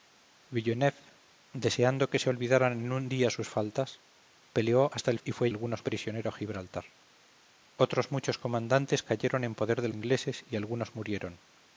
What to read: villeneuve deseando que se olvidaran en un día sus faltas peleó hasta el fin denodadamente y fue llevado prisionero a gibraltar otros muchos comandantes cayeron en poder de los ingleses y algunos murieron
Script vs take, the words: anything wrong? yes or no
yes